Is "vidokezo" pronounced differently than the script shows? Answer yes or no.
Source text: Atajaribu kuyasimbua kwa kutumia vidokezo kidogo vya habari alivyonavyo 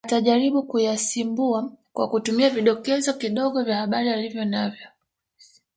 no